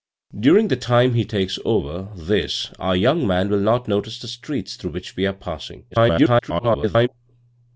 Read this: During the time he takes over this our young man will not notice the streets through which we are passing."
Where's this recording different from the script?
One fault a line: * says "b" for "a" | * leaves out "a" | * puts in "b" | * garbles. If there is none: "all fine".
* garbles